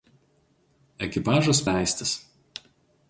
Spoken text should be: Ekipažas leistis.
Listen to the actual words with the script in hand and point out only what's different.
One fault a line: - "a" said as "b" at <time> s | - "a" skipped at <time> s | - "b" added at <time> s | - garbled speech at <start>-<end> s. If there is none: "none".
none